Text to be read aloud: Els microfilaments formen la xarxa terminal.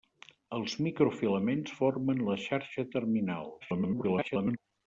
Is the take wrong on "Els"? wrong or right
right